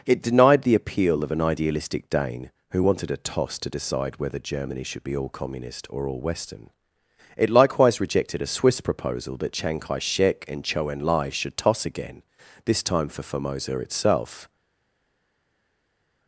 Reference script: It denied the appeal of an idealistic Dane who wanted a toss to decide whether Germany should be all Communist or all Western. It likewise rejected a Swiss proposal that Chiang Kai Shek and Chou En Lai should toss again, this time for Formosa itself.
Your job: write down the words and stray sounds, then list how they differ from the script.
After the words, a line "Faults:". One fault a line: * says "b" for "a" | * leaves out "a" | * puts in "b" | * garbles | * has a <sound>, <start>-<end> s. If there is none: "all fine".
It denied the appeal of an idealistic Dane who wanted a toss to decide whether Germany should be all Communist or all Western. It likewise rejected a Swiss proposal that Chiang Kai Shek and Chou En Lai should toss again, this time for Formosa itself.
Faults:
all fine